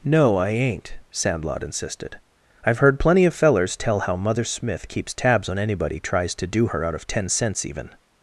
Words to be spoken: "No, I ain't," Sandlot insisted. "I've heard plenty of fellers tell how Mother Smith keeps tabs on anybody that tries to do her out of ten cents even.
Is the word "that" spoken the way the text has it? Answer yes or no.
no